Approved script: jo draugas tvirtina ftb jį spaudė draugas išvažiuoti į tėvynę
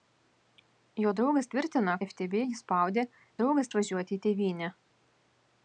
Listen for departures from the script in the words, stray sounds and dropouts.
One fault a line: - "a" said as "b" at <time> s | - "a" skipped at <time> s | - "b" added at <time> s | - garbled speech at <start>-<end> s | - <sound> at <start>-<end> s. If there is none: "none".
none